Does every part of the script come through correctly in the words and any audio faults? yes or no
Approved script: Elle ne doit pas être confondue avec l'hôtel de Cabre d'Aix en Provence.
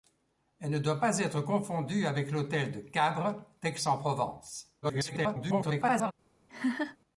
no